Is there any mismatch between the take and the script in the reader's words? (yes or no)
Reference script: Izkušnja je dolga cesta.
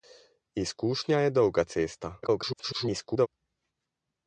yes